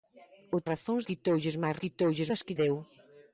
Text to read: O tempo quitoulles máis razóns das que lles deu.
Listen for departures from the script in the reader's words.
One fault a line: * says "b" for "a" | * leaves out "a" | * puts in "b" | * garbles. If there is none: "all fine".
* says "razóns" for "tempo"
* says "quitoulles" for "razóns"
* leaves out "lles"